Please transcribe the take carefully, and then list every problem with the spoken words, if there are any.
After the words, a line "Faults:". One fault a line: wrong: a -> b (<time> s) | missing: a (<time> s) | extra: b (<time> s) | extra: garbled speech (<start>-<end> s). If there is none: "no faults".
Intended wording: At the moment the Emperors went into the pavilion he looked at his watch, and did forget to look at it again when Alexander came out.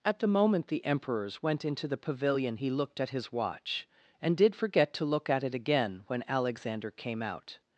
At the moment the Emperors went into the pavilion he looked at his watch, and did forget to look at it again when Alexander came out.
Faults:
no faults